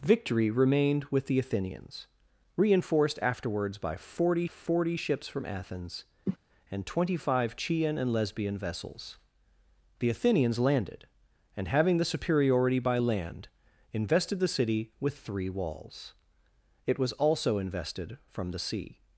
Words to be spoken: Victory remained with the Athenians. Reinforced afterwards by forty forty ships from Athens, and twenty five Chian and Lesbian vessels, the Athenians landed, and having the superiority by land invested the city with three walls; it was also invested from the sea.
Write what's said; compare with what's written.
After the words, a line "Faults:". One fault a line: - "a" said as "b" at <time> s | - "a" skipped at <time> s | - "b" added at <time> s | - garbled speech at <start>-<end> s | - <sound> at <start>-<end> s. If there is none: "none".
Victory remained with the Athenians. Reinforced afterwards by forty forty ships from Athens, and twenty five Chian and Lesbian vessels, the Athenians landed, and having the superiority by land invested the city with three walls; it was also invested from the sea.
Faults:
- cough at 6.3-6.4 s